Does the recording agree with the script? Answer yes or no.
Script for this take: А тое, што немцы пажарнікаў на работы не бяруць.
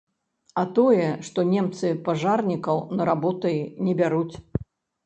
yes